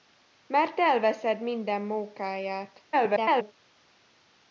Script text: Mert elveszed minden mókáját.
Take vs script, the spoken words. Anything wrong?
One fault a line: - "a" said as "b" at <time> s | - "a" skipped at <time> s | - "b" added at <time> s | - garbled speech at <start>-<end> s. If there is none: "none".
- garbled speech at 2.9-3.5 s